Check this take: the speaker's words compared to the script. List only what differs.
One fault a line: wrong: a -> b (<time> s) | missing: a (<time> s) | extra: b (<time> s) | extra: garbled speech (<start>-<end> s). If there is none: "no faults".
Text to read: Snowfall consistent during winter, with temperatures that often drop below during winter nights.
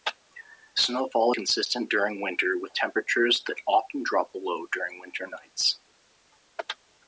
no faults